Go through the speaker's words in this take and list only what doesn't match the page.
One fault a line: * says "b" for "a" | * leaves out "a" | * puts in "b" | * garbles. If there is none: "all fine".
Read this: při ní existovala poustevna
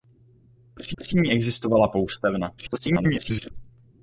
* puts in "při"
* garbles